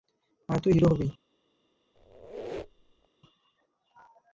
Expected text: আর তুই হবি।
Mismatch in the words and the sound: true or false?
true